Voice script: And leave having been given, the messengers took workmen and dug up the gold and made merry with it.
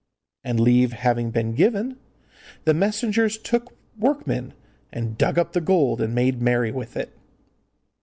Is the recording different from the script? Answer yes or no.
no